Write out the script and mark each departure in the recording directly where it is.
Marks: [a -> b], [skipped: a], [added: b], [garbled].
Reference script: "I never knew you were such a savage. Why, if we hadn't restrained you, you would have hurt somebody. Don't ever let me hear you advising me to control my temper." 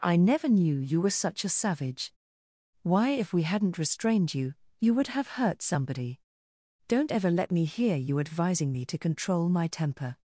"I never knew you were such a savage. Why, if we hadn't restrained you, you would have hurt somebody. Don't ever let me hear you advising me to control my temper."